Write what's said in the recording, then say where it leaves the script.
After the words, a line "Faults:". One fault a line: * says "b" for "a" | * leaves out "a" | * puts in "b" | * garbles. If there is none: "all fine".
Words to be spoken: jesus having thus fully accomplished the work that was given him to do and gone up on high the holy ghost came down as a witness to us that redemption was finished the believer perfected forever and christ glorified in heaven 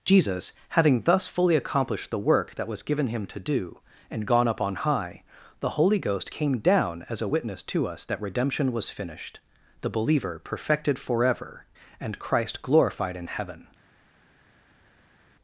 jesus having thus fully accomplished the work that was given him to do and gone up on high the holy ghost came down as a witness to us that redemption was finished the believer perfected forever and christ glorified in heaven
Faults:
all fine